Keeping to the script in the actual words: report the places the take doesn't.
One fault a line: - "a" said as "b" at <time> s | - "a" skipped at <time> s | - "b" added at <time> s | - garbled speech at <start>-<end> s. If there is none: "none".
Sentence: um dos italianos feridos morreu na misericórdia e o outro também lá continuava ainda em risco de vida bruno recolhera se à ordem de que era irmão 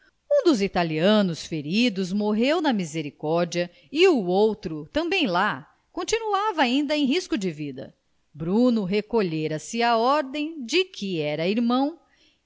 none